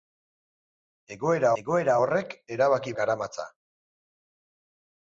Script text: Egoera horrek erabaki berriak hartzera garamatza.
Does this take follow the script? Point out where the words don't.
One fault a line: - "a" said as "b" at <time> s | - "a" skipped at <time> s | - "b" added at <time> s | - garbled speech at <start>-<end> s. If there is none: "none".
- "egoera" added at 1.6 s
- "berriak hartzera" skipped at 2.9 s